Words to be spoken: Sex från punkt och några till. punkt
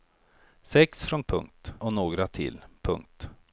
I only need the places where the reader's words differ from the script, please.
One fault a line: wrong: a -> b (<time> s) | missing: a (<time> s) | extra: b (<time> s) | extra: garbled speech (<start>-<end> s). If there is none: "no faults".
no faults